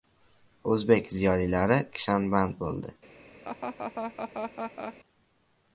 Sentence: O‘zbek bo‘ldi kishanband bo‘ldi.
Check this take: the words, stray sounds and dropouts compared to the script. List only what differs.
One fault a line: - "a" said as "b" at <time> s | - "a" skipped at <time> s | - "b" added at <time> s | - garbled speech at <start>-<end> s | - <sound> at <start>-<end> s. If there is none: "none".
- "bo‘ldi" said as "ziyolilari" at 1.2 s
- laugh at 3.4-5.0 s